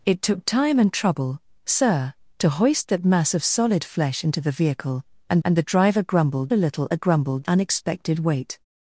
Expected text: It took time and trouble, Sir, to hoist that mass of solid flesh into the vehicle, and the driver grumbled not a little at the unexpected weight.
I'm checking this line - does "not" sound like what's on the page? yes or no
no